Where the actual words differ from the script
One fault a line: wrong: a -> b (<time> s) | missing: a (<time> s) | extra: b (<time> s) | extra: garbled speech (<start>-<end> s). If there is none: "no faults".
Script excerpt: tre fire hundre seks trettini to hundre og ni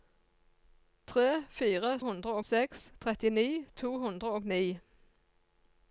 no faults